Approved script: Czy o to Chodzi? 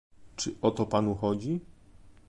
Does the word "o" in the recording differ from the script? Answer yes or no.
no